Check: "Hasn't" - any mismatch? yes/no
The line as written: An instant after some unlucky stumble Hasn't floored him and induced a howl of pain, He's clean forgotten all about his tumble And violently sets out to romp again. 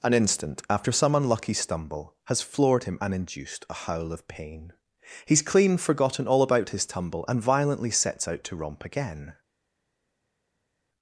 yes